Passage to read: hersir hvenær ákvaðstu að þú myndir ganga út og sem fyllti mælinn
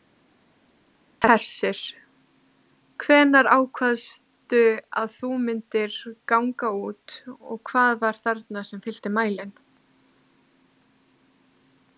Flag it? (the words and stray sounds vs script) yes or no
yes